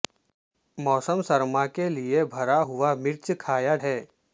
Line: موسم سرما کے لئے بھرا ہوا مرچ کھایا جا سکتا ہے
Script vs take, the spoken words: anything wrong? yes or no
yes